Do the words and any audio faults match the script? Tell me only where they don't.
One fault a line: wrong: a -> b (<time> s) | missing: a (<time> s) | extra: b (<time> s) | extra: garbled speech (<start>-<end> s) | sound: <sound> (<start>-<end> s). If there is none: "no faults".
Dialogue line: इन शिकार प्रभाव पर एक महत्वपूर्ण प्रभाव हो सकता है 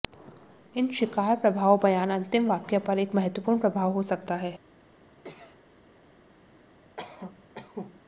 extra: बयान अंतिम वाक्य (1.8 s)
sound: sneeze (5.1-5.6 s)
sound: cough (7.0-8.0 s)